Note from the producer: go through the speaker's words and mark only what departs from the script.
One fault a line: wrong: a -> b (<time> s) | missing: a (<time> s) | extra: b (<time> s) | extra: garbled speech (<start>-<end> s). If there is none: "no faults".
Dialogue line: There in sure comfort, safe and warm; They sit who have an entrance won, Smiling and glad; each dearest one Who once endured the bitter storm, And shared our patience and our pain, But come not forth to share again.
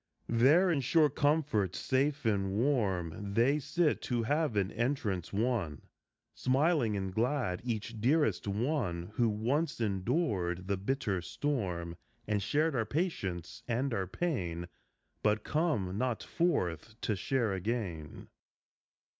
no faults